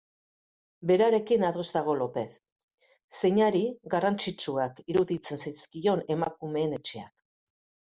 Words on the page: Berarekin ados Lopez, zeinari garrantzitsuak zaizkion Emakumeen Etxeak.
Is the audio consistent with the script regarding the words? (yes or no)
no